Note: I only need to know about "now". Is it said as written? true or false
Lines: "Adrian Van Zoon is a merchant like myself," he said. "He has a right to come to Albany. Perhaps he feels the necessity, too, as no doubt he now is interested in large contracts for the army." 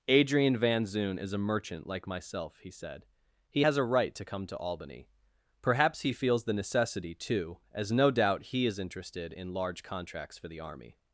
false